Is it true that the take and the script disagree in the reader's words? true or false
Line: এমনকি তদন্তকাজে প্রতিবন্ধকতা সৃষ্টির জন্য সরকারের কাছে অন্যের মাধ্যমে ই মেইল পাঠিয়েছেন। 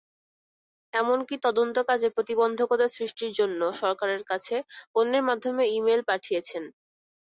false